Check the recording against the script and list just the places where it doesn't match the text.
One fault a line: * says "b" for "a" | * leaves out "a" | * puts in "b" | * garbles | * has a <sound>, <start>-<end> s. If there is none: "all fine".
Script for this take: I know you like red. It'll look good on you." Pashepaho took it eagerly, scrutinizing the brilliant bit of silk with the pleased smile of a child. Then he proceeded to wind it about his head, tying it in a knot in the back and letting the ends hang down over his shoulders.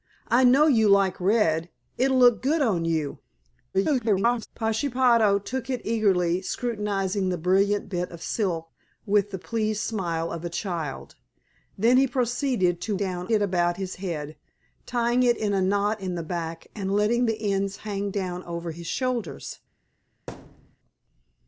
* garbles
* says "down" for "wind"
* has a thud, 20.3-20.8 s